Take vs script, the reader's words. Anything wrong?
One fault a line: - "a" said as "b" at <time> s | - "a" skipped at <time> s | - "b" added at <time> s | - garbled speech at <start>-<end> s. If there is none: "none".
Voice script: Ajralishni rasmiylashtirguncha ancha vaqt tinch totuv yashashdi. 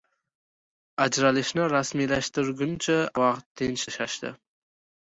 - "ancha" skipped at 3.0 s
- "totuv" skipped at 3.9 s